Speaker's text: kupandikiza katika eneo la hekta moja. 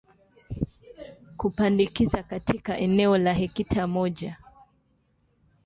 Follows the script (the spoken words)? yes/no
yes